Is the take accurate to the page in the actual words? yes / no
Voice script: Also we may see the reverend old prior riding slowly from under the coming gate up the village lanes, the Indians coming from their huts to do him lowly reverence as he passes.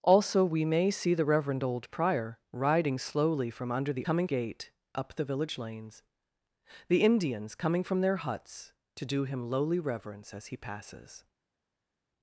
yes